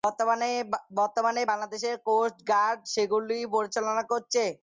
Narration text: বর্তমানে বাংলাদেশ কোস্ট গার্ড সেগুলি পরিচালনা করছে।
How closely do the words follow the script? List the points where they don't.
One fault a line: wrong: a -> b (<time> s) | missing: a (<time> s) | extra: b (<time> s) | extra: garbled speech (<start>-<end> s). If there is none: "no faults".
no faults